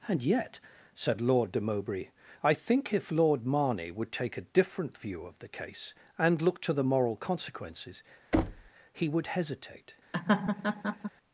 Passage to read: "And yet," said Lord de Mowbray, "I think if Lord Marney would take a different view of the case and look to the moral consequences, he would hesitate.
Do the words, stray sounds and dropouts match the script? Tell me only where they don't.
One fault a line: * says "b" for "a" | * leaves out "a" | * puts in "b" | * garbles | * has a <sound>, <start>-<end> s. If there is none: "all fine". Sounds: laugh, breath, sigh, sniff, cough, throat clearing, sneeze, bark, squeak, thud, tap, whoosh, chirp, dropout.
* has a thud, 8.3-8.7 s
* has a laugh, 10.1-11.1 s